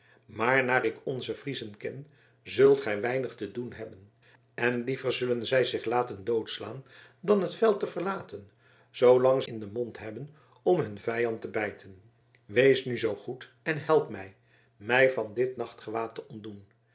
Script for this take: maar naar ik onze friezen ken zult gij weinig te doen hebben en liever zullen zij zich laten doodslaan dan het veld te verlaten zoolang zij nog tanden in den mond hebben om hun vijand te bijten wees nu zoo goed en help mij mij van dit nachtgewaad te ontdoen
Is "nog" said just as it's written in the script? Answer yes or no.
no